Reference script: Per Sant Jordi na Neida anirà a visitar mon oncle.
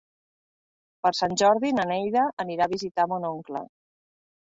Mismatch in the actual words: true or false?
false